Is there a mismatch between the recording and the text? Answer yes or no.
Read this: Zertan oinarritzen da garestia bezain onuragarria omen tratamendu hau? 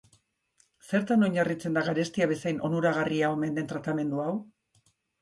yes